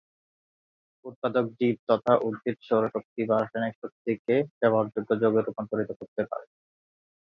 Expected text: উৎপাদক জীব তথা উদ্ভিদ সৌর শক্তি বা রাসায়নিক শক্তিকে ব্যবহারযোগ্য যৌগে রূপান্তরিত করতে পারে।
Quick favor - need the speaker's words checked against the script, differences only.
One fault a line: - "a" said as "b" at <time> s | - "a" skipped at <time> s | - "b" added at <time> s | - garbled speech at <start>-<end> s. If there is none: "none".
none